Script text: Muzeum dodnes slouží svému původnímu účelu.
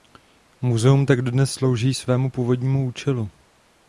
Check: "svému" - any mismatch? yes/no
no